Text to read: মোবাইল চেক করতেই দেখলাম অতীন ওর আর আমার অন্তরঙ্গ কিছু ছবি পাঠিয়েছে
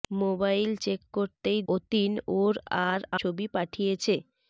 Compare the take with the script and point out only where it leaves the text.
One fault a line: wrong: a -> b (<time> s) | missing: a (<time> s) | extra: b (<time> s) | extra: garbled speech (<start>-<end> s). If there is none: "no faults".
missing: দেখলাম (1.6 s)
missing: আমার অন্তরঙ্গ কিছু (3.0 s)